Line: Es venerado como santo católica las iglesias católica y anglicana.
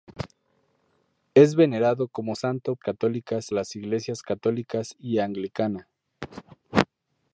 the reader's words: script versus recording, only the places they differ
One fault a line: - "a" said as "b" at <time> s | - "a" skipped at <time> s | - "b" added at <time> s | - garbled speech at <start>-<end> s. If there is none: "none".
none